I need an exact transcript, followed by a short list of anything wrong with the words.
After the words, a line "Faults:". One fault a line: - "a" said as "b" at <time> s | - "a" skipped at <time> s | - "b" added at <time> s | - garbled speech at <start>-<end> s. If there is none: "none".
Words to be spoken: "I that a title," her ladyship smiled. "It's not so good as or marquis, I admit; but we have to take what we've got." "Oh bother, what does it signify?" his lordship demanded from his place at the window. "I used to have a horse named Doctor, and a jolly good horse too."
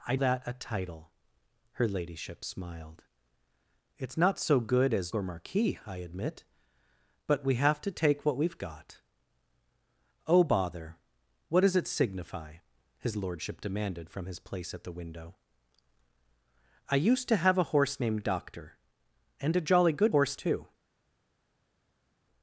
"I that a title," her ladyship smiled. "It's not so good as or marquis, I admit; but we have to take what we've got." "Oh bother, what does it signify?" his lordship demanded from his place at the window. "I used to have a horse named Doctor, and a jolly good horse too."
Faults:
none